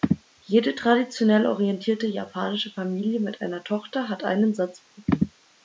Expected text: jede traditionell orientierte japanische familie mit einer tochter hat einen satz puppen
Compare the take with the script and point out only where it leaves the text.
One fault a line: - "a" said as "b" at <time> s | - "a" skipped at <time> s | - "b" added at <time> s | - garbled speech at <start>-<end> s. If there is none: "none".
none